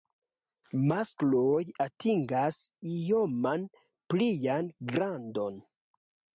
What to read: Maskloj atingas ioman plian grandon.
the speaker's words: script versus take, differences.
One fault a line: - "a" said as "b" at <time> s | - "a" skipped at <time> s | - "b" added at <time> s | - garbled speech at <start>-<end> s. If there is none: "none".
none